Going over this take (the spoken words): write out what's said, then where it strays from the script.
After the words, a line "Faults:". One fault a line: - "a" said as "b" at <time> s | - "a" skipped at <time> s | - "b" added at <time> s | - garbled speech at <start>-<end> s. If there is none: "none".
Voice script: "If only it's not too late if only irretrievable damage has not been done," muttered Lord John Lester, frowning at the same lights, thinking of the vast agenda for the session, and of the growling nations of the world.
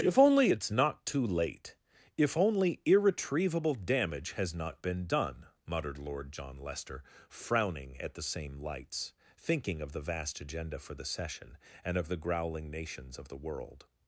"If only it's not too late if only irretrievable damage has not been done," muttered Lord John Lester, frowning at the same lights, thinking of the vast agenda for the session, and of the growling nations of the world.
Faults:
none